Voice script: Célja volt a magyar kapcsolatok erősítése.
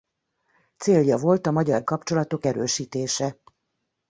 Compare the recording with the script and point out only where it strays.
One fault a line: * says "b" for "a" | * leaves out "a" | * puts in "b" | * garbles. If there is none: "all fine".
all fine